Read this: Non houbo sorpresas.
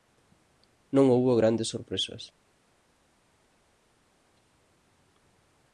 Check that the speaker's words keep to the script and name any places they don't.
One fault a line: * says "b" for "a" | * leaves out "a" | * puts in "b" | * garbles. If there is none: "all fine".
* puts in "grandes"